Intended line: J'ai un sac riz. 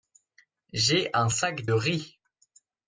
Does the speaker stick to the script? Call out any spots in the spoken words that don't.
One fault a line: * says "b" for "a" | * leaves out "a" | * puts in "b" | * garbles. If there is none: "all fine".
all fine